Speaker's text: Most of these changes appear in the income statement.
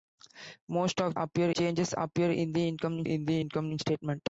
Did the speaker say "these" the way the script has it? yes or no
no